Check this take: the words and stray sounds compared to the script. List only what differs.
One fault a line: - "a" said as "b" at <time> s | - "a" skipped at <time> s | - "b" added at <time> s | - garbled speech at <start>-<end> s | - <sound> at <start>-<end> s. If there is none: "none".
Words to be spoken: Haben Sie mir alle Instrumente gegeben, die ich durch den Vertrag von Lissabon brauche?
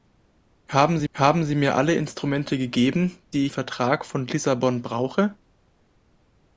- "haben Sie" added at 1.1 s
- "ich durch den" skipped at 3.5 s